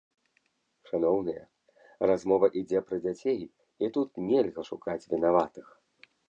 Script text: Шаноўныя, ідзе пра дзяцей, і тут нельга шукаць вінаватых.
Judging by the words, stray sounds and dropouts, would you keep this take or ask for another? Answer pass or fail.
fail